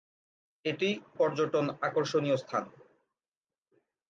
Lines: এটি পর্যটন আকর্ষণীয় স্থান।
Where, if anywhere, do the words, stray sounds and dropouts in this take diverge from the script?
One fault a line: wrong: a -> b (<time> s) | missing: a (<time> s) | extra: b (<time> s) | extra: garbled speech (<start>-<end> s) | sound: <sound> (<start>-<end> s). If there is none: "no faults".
no faults